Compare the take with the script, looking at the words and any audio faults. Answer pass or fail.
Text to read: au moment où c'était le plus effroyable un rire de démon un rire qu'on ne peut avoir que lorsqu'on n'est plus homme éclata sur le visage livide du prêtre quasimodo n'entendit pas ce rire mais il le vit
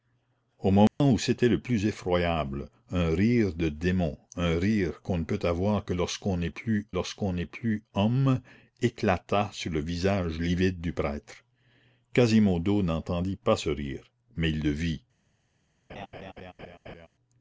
fail